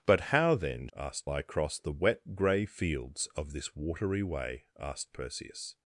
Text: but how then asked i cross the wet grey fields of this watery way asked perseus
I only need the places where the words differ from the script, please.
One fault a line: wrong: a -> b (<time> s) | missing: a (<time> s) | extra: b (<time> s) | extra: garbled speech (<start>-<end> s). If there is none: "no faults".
no faults